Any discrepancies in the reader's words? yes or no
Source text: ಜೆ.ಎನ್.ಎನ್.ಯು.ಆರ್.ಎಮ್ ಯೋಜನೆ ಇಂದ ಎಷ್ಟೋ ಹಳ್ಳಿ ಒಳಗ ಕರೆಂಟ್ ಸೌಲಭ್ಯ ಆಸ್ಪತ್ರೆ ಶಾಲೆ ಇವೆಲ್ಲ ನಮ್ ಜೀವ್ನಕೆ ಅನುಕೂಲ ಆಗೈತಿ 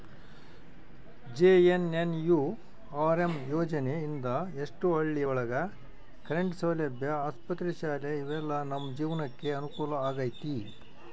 no